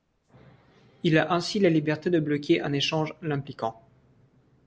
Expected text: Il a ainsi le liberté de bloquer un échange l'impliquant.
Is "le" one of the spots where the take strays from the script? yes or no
yes